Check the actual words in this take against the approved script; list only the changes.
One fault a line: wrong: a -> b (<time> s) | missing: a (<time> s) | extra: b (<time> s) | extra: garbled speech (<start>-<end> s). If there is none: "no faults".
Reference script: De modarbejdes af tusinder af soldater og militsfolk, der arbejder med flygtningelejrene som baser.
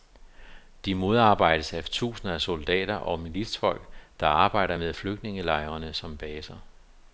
no faults